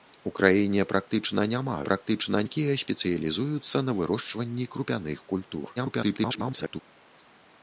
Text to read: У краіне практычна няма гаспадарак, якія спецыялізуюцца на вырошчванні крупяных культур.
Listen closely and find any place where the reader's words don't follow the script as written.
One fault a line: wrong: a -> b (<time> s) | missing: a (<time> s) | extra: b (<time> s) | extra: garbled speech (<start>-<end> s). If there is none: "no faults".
wrong: гаспадарак -> практычна (1.9 s)
extra: garbled speech (5.8-6.8 s)